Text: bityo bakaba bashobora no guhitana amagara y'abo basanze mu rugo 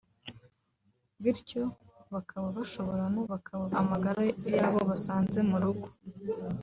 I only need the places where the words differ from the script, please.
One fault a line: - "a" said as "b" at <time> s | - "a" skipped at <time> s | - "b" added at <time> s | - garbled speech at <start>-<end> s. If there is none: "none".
- "guhitana" said as "bakaba" at 3.3 s